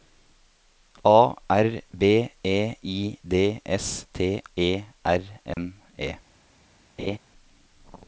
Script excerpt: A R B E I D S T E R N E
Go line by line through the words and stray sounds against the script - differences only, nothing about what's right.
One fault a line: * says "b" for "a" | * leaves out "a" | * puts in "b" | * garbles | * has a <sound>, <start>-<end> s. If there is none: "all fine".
* has a dropout, 5.5-5.6 s
* has a laugh, 7.0-7.2 s